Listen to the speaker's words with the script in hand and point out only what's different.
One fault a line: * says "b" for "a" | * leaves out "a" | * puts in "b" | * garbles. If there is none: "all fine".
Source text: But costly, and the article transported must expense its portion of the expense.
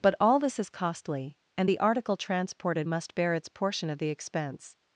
* puts in "all this is"
* says "bear" for "expense"